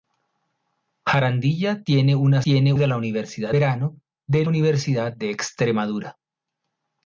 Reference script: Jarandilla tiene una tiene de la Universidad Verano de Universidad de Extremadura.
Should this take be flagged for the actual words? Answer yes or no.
no